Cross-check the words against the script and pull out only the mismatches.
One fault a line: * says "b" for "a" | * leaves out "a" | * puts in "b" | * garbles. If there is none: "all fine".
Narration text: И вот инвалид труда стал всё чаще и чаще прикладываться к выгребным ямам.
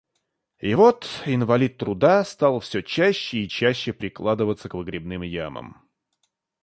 all fine